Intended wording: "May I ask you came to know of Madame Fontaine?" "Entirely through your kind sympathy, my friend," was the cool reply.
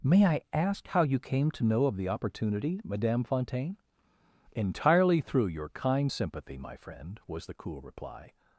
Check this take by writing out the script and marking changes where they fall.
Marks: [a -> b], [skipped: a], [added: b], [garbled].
"May I ask [added: how] you came to know of [added: the opportunity] Madame Fontaine?" "Entirely through your kind sympathy, my friend," was the cool reply.